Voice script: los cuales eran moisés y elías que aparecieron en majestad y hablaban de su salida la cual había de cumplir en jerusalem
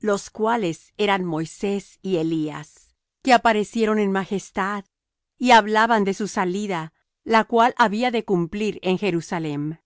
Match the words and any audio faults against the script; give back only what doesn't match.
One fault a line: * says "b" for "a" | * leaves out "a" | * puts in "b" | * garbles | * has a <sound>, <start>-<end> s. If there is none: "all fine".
all fine